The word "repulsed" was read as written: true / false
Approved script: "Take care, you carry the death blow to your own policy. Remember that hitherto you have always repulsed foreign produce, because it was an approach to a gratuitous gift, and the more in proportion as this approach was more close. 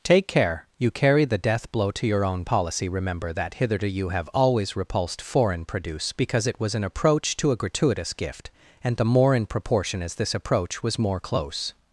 true